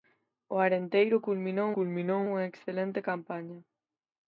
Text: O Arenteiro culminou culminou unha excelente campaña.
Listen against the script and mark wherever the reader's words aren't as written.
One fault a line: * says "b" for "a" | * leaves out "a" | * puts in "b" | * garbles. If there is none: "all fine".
all fine